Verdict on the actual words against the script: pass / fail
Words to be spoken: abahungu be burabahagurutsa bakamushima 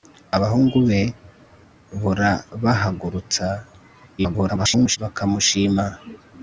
fail